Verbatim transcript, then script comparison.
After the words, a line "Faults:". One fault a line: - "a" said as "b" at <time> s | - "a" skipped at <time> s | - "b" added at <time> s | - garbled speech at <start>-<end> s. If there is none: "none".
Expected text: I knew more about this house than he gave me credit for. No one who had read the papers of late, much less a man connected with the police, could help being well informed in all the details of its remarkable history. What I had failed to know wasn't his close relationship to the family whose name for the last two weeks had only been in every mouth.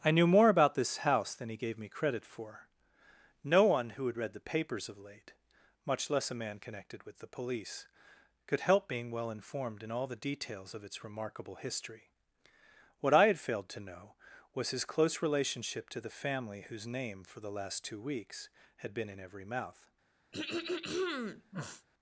I knew more about this house than he gave me credit for. No one who had read the papers of late, much less a man connected with the police, could help being well informed in all the details of its remarkable history. What I had failed to know was his close relationship to the family whose name for the last two weeks had been in every mouth.
Faults:
- "wasn't" said as "was" at 14.6 s
- "only" skipped at 18.9 s